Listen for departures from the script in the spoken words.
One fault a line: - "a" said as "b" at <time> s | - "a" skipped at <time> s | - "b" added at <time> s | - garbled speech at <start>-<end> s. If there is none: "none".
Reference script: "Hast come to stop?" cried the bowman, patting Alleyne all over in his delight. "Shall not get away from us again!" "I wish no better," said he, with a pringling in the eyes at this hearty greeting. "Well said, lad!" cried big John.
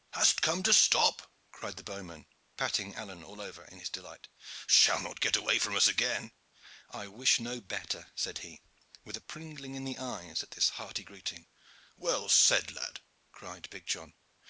none